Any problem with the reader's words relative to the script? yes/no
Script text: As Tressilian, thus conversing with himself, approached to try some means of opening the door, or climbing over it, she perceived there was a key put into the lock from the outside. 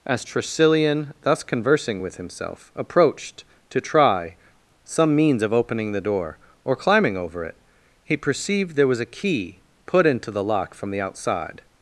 yes